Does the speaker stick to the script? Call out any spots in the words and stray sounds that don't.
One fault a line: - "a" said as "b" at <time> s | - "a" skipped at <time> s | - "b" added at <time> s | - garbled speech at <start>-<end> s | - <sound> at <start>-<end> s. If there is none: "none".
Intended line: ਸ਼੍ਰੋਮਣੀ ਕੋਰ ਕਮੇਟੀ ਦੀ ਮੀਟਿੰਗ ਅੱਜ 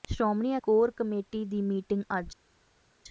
none